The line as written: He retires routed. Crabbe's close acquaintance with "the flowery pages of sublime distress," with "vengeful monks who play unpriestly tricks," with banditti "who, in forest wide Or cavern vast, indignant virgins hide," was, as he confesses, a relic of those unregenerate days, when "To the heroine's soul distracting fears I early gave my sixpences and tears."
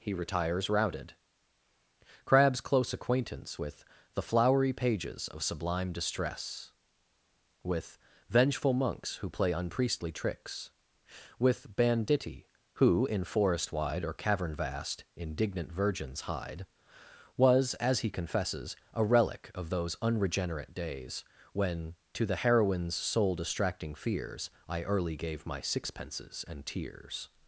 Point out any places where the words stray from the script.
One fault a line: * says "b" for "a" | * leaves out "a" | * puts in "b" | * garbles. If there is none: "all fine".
all fine